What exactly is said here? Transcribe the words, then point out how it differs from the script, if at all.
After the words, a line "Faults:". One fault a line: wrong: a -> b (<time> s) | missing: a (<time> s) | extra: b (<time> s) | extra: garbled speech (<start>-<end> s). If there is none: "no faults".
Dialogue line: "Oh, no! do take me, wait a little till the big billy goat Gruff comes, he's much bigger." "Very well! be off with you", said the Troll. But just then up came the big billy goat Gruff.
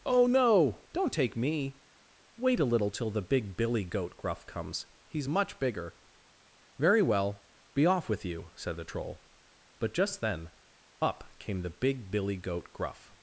"Oh, no! don't take me, wait a little till the big billy goat Gruff comes, he's much bigger." "Very well! be off with you", said the Troll. But just then up came the big billy goat Gruff.
Faults:
wrong: do -> don't (0.9 s)